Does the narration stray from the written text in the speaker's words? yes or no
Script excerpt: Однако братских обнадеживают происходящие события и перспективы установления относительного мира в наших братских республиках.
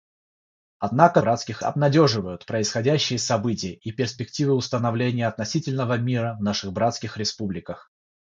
no